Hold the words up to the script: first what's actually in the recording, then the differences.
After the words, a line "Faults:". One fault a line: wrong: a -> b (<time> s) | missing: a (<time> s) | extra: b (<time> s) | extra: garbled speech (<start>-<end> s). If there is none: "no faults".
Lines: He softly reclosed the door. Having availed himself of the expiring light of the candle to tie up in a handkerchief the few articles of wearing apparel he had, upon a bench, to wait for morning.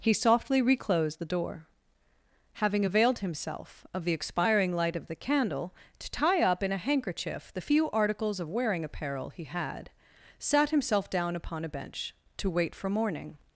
He softly reclosed the door. Having availed himself of the expiring light of the candle to tie up in a handkerchief the few articles of wearing apparel he had, sat himself down upon a bench, to wait for morning.
Faults:
extra: sat himself down (10.4 s)